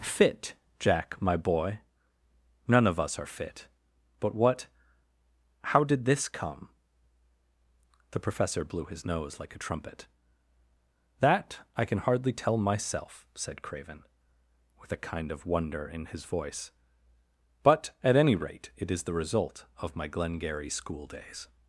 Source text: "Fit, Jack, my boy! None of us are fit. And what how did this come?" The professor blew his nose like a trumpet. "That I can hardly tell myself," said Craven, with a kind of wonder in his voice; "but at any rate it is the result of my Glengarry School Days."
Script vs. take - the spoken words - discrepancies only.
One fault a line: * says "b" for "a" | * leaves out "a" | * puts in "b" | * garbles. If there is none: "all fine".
* says "But" for "And"